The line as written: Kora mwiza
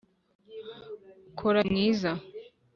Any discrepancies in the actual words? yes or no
no